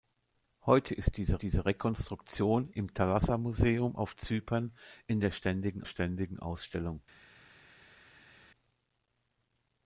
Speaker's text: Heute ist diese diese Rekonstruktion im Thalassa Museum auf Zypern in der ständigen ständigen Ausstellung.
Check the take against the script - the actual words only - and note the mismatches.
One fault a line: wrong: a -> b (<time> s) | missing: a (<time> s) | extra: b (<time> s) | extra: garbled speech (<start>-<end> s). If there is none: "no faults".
no faults